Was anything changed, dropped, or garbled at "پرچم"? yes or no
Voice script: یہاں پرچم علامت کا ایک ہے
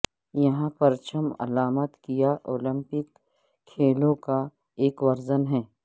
no